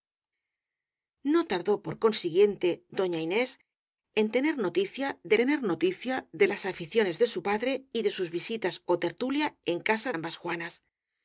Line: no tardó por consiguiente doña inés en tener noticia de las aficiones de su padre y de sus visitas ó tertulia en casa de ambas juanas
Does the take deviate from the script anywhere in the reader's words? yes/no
yes